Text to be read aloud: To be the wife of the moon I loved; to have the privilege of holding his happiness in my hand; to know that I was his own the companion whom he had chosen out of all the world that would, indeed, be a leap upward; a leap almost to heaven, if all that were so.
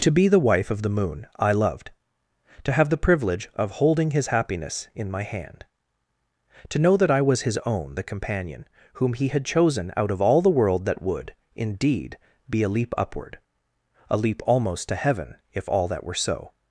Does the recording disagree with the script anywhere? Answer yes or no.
no